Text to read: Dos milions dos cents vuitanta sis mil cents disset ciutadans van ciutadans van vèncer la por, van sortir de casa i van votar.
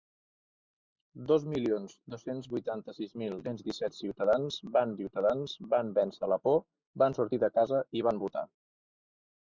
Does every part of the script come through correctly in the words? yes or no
yes